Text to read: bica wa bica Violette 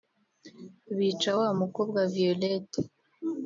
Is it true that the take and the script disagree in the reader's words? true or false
true